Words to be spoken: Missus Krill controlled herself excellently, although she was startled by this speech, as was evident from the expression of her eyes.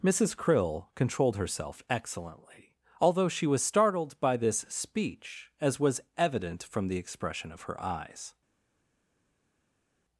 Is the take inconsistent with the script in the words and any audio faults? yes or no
no